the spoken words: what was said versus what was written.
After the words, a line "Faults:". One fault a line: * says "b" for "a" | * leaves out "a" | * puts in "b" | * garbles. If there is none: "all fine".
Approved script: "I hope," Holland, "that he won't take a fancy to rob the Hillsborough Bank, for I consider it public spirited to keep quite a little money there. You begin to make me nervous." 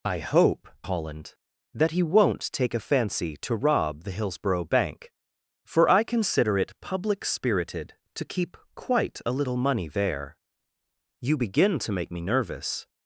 "I hope," Holland, "that he won't take a fancy to rob the Hillsborough Bank, for I consider it public spirited to keep quite a little money there. You begin to make me nervous."
Faults:
all fine